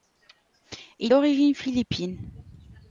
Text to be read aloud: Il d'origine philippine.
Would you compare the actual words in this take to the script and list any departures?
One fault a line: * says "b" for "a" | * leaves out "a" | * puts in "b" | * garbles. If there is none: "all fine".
all fine